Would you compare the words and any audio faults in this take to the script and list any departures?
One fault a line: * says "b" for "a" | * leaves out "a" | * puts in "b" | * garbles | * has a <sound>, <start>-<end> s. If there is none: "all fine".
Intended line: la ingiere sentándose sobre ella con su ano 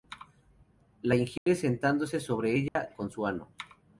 * has a dropout, 1.4-1.5 s
* has a dropout, 2.7-2.8 s